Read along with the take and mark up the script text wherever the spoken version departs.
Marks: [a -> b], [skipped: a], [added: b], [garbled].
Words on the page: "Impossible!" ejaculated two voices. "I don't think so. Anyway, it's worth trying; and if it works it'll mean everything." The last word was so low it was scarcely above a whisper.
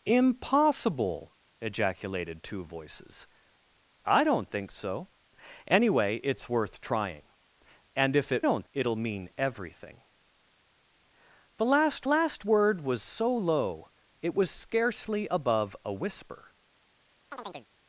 "Impossible!" ejaculated two voices. "I don't think so. Anyway, it's worth trying; and if it [works -> don't] it'll mean everything." The last [added: last] word was so low it was scarcely above a whisper.